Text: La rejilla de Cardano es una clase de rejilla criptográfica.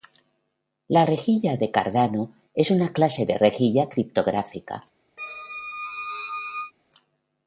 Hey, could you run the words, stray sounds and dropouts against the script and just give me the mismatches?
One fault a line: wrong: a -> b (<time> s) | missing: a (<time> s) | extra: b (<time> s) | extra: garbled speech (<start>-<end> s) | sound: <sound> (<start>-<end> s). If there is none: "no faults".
sound: squeak (5.2-6.7 s)